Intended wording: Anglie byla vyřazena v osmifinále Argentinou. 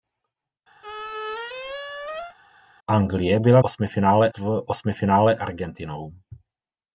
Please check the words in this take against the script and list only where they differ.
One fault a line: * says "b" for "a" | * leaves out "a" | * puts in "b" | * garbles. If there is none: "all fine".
* says "osmifinále" for "vyřazena"